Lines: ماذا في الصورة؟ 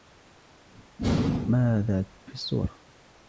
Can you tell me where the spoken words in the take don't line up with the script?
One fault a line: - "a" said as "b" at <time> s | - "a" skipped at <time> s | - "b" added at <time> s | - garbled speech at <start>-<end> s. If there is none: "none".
none